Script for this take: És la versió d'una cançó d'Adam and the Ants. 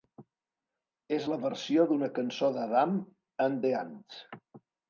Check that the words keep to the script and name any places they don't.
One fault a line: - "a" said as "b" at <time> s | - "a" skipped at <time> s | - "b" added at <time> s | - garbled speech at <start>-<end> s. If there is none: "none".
none